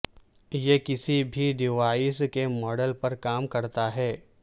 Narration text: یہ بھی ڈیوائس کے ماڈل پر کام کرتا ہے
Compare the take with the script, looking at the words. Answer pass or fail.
fail